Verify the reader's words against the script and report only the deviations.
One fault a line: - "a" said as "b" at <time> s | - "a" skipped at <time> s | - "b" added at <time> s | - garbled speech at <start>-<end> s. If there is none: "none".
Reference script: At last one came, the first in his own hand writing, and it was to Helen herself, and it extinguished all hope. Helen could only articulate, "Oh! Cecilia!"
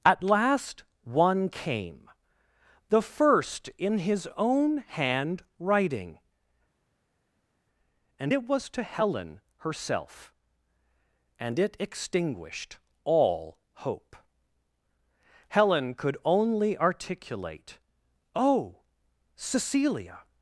none